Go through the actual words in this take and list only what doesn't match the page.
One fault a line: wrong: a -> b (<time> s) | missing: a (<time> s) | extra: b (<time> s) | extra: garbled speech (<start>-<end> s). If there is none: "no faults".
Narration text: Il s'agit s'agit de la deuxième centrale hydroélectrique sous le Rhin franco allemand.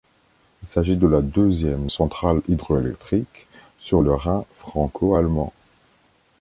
missing: s'agit (0.9 s)
wrong: sous -> sur (3.8 s)